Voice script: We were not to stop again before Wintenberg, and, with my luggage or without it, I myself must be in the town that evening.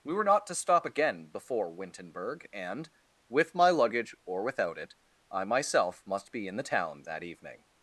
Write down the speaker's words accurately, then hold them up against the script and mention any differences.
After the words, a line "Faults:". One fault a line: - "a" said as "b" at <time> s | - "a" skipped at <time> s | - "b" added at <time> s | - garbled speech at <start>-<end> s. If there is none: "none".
We were not to stop again before Wintenberg, and, with my luggage or without it, I myself must be in the town that evening.
Faults:
none